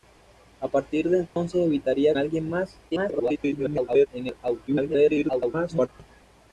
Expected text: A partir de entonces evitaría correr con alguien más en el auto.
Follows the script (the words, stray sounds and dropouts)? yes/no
no